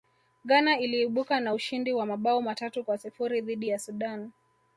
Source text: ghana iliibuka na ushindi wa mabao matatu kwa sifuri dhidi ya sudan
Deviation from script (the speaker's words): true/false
false